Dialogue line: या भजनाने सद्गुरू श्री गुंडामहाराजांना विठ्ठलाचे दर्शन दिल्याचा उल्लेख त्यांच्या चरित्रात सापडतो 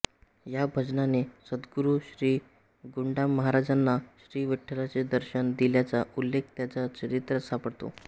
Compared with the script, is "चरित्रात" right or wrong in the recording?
right